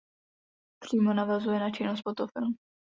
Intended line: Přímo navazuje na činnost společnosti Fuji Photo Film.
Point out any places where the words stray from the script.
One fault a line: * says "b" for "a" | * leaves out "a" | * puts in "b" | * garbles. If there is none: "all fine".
* leaves out "společnosti Fuji"